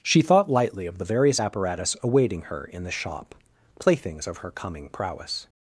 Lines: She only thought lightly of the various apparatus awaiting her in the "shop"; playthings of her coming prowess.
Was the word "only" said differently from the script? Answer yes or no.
yes